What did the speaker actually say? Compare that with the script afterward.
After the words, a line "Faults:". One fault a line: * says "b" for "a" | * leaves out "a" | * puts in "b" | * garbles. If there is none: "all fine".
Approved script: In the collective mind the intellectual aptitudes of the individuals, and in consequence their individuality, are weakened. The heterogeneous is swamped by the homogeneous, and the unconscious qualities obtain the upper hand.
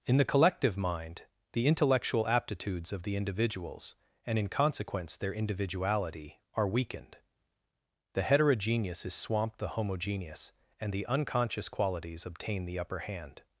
In the collective mind the intellectual aptitudes of the individuals, and in consequence their individuality, are weakened. The heterogeneous is swamped the homogeneous, and the unconscious qualities obtain the upper hand.
Faults:
* leaves out "by"